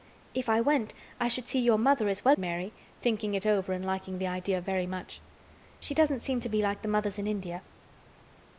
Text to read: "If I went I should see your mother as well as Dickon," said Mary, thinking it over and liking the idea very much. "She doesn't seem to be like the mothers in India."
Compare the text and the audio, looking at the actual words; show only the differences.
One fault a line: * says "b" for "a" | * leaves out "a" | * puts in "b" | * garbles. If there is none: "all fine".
* leaves out "as Dickon said"